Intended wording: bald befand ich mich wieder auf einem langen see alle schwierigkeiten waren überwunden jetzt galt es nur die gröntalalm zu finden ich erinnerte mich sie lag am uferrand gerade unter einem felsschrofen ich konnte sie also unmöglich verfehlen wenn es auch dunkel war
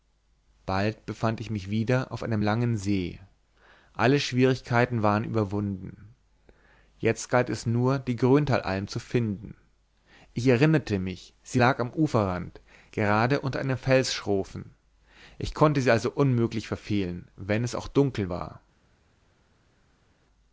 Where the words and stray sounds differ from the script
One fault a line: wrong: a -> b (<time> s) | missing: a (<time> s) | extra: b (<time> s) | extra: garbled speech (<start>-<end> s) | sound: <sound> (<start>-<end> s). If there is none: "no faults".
no faults